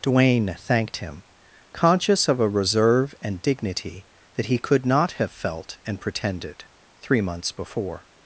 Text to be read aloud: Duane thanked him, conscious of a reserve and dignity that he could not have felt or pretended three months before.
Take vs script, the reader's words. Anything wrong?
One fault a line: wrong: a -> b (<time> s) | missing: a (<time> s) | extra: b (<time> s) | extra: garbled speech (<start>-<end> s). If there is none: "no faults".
wrong: or -> and (5.8 s)